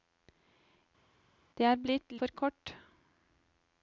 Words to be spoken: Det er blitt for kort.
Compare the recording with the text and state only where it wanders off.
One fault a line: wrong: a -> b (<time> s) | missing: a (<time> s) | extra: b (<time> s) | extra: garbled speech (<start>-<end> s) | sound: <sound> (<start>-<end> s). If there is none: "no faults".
no faults